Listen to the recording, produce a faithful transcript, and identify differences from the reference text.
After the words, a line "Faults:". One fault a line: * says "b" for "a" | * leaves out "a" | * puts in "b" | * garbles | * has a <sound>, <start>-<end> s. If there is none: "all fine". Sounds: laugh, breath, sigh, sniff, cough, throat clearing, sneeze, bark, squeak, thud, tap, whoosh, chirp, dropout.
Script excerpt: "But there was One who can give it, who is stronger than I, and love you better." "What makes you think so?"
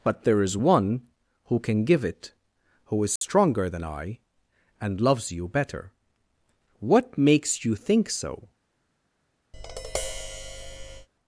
"But there is One who can give it, who is stronger than I, and loves you better." "What makes you think so?"
Faults:
* says "is" for "was"
* has a dropout, 3.2-3.2 s
* says "loves" for "love"
* has a tap, 9.5-11.1 s